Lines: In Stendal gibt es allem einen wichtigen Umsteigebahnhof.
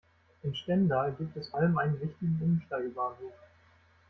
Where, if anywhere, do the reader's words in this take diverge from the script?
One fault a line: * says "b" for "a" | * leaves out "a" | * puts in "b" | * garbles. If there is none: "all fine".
all fine